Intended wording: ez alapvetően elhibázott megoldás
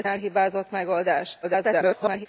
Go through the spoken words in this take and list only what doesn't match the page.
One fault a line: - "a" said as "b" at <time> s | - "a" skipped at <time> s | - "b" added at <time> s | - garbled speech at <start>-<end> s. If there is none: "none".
- "alapvetően" skipped at 0.1 s
- garbled speech at 1.4-2.3 s